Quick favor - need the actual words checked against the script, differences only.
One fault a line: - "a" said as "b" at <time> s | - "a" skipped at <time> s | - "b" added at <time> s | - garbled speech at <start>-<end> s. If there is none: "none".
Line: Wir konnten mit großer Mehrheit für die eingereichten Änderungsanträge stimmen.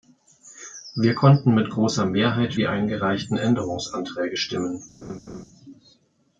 - "für" skipped at 2.5 s